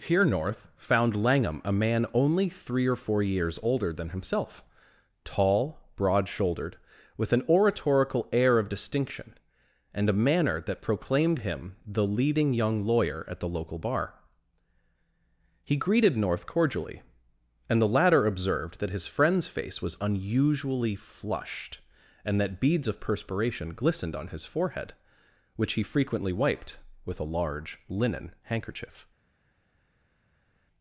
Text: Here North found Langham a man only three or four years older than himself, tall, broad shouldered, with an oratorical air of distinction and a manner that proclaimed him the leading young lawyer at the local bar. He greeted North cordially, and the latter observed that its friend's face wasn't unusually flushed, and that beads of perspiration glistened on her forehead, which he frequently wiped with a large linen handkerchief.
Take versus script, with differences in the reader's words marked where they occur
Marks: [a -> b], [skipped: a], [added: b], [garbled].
Here North found Langham a man only three or four years older than himself, tall, broad shouldered, with an oratorical air of distinction and a manner that proclaimed him the leading young lawyer at the local bar. He greeted North cordially, and the latter observed that [its -> his] friend's face [wasn't -> was] unusually flushed, and that beads of perspiration glistened on [her -> his] forehead, which he frequently wiped with a large linen handkerchief.